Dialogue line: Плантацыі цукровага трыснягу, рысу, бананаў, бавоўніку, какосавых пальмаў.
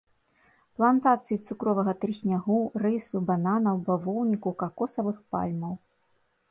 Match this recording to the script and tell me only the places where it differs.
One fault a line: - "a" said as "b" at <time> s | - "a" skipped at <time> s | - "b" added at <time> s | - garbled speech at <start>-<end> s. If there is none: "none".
none